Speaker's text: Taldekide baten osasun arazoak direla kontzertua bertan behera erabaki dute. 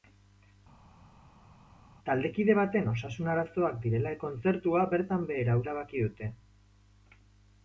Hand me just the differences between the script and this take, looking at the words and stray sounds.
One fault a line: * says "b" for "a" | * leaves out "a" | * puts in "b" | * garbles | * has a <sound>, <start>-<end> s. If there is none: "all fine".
all fine